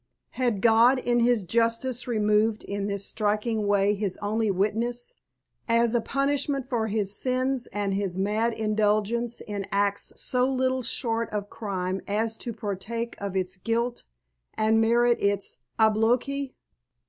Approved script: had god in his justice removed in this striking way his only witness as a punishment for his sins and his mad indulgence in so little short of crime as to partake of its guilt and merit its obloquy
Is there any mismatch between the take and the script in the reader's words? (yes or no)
yes